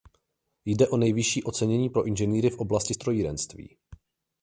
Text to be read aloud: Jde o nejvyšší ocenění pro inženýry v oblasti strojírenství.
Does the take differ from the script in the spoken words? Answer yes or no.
no